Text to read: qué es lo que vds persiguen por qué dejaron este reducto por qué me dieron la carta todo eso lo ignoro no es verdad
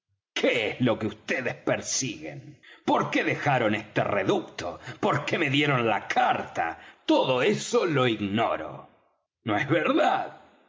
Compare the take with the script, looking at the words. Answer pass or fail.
pass